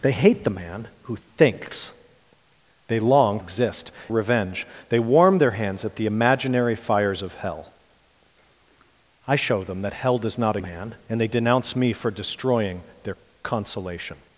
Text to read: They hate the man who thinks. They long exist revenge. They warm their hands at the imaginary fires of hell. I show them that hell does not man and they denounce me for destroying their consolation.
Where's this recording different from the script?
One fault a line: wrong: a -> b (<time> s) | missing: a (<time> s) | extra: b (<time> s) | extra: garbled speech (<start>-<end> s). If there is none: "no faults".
no faults